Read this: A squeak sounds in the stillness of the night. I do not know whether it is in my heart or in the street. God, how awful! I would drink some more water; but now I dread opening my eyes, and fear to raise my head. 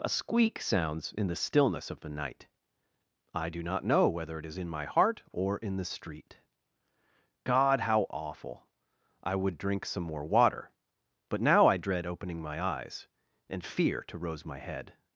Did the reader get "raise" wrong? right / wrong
wrong